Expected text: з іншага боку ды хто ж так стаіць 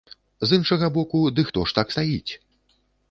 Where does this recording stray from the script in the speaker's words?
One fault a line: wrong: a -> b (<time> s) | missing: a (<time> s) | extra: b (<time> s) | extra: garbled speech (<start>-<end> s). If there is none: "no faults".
no faults